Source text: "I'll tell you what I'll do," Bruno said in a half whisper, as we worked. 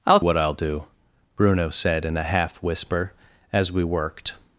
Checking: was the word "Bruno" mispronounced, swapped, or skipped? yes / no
no